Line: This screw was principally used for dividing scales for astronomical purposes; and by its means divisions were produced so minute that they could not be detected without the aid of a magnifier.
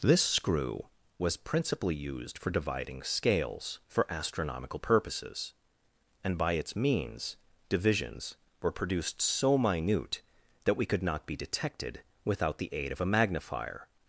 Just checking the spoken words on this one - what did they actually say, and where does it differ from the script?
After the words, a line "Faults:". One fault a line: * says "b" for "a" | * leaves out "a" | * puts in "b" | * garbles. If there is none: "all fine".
This screw was principally used for dividing scales for astronomical purposes; and by its means divisions were produced so minute that we could not be detected without the aid of a magnifier.
Faults:
* says "we" for "they"